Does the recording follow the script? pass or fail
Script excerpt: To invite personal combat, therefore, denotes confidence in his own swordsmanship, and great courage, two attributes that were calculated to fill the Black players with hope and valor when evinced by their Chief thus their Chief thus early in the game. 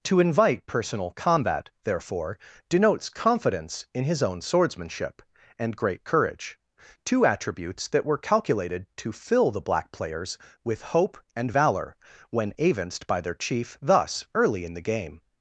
fail